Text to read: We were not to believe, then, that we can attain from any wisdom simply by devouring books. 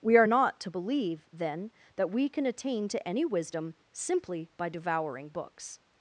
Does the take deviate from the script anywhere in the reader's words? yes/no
yes